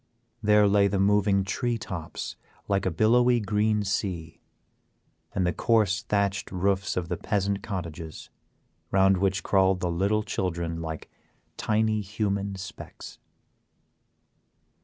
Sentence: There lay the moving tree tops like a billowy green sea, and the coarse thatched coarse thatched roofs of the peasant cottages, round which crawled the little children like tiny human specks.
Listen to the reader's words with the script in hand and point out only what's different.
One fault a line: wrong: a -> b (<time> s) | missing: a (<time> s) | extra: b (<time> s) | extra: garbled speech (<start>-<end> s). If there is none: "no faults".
missing: coarse thatched (6.5 s)